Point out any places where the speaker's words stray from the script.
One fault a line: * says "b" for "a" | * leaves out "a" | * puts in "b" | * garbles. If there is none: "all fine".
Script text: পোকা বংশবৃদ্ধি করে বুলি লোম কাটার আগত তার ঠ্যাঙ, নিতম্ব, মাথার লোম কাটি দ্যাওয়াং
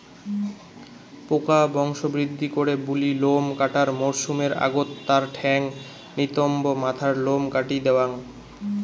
* puts in "মরসুমের"